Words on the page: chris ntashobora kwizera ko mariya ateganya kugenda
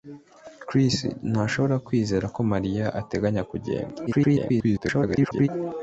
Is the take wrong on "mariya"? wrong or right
right